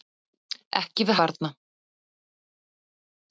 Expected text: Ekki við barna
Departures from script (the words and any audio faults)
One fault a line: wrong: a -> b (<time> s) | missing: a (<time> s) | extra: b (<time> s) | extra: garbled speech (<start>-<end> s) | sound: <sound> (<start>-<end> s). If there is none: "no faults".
no faults